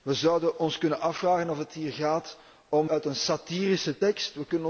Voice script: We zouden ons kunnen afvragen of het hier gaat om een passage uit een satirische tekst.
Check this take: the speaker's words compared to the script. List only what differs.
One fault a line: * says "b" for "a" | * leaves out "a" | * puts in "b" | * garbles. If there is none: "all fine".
* leaves out "een passage"